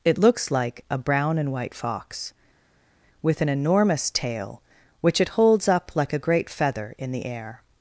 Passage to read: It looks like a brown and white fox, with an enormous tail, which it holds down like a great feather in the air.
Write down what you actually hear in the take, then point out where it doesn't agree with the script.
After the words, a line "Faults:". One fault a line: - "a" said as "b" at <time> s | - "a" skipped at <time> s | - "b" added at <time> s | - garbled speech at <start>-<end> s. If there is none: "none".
It looks like a brown and white fox, with an enormous tail, which it holds up like a great feather in the air.
Faults:
- "down" said as "up" at 5.7 s